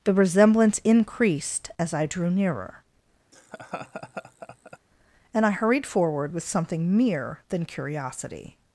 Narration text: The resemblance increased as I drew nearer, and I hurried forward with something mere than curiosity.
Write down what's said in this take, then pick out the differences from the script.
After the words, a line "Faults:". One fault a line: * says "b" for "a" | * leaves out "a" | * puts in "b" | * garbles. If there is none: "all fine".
The resemblance increased as I drew nearer, and I hurried forward with something mere than curiosity.
Faults:
all fine